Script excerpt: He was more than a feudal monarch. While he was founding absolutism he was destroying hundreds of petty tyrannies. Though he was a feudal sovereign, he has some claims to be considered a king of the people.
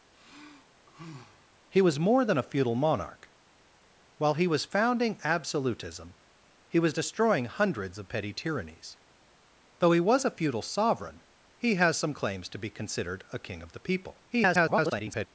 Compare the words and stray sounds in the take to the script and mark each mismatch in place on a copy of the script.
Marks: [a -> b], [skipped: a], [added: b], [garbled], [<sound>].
[sigh] He was more than a feudal monarch. While he was founding absolutism he was destroying hundreds of petty tyrannies. Though he was a feudal sovereign, he has some claims to be considered a king of the people. [garbled]